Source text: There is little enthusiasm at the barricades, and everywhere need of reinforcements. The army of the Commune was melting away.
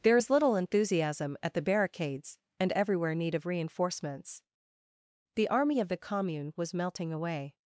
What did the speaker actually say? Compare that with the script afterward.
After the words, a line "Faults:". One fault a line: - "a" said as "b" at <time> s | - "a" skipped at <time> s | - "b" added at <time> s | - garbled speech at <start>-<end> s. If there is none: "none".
There is little enthusiasm at the barricades, and everywhere need of reinforcements. The army of the Commune was melting away.
Faults:
none